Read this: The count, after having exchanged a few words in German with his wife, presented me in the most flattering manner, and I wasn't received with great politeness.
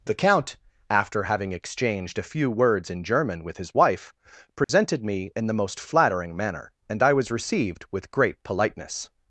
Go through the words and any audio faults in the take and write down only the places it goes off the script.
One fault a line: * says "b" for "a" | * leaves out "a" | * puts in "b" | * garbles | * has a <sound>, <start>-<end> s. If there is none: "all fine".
* has a dropout, 4.6-4.7 s
* says "was" for "wasn't"